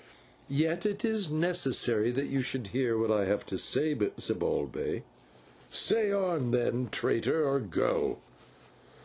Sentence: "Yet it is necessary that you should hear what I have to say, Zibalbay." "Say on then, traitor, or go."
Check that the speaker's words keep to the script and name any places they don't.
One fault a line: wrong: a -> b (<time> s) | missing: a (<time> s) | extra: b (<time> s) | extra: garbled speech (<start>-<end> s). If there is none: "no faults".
no faults